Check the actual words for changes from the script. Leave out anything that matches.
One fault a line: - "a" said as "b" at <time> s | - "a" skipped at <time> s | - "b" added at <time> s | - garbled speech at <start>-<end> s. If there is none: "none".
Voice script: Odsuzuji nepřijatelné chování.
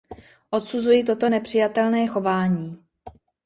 - "toto" added at 1.0 s